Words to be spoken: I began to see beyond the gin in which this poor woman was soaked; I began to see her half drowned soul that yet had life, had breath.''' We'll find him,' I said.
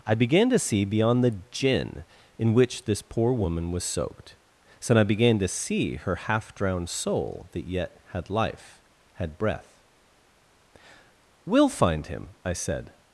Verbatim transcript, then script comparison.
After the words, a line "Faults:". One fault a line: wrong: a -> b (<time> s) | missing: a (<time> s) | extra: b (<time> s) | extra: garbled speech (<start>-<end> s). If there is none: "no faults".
I began to see beyond the gin in which this poor woman was soaked; so I began to see her half drowned soul that yet had life, had breath.''' We'll find him,' I said.
Faults:
extra: so (4.8 s)